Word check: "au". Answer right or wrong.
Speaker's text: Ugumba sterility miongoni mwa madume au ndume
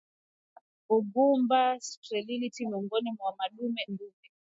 wrong